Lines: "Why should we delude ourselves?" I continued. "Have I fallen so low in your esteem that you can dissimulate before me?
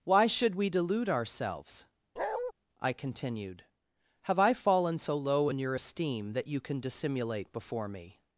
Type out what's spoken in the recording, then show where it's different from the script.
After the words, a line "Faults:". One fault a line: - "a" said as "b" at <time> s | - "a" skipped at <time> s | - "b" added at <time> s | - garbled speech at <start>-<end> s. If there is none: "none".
"Why should we delude ourselves?" I continued. "Have I fallen so low in your esteem that you can dissimulate before me?
Faults:
none